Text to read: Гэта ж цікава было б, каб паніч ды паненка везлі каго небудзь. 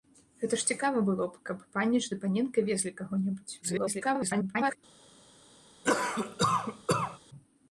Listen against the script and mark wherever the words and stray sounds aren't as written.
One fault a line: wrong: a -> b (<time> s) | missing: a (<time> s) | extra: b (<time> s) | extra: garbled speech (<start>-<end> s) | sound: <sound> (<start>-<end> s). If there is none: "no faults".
extra: garbled speech (3.6-4.8 s)
sound: cough (5.8-7.2 s)